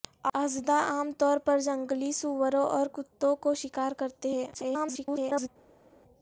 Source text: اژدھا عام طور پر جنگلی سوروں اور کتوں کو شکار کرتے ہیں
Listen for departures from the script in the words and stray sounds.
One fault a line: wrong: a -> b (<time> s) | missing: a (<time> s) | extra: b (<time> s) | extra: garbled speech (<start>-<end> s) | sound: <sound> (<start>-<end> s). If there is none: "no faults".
extra: garbled speech (4.5-5.5 s)